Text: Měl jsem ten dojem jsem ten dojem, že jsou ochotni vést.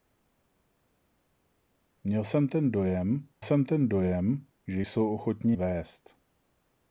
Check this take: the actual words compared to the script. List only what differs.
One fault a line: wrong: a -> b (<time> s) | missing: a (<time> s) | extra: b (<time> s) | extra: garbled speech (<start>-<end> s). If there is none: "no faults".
no faults